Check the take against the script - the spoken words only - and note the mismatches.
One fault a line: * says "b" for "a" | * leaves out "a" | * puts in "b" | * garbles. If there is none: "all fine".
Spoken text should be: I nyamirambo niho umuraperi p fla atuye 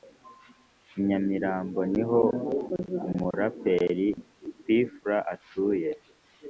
all fine